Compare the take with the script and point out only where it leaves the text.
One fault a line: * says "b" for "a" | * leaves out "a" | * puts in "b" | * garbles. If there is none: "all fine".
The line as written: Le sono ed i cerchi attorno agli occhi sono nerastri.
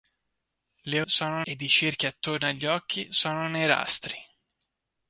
all fine